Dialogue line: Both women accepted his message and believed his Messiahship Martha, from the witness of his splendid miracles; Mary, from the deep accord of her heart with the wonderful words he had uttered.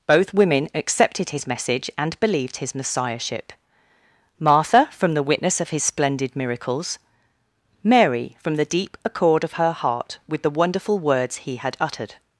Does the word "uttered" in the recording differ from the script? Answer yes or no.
no